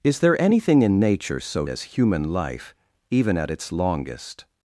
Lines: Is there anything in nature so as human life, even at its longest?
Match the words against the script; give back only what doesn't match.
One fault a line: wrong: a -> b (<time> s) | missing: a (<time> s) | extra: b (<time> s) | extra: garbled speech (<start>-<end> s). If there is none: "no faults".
no faults